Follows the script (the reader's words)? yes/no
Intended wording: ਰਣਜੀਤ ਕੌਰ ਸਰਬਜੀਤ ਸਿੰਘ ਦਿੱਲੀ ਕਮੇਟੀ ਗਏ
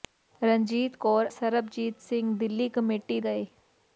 yes